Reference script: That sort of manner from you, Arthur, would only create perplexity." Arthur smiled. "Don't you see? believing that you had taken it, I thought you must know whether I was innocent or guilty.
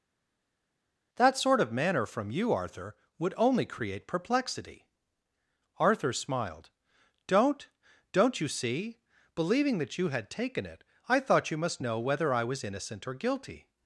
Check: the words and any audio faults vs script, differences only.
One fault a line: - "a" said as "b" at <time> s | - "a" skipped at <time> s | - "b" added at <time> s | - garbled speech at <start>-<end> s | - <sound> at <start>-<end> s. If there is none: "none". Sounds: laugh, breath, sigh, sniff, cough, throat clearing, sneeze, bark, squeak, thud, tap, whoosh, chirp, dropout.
- "Don't" added at 8.1 s